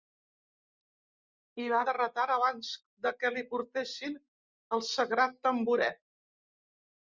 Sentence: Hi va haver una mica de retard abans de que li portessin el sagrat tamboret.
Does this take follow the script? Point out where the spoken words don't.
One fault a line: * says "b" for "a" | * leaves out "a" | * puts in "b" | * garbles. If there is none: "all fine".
* leaves out "haver una mica"